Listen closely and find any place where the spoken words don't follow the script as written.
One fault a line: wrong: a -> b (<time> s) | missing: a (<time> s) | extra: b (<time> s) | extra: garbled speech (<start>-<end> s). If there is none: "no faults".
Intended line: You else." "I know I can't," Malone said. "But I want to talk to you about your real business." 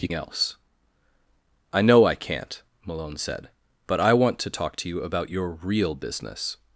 no faults